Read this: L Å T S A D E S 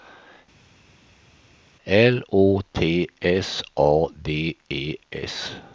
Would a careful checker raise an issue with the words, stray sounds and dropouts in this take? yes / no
no